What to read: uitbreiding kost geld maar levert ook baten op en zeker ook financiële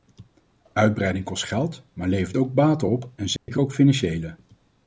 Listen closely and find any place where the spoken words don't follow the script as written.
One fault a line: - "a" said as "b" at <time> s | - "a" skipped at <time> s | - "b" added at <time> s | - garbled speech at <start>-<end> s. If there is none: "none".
none